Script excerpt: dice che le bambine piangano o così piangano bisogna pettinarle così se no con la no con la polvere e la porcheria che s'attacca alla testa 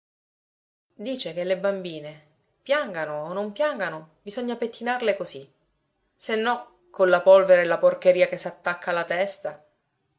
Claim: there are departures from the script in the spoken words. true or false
true